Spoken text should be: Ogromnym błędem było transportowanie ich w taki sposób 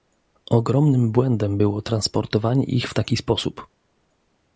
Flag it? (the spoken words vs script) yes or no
no